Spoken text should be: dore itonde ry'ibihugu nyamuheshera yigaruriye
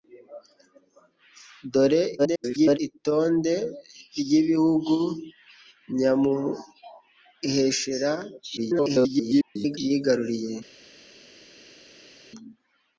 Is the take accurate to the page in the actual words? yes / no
no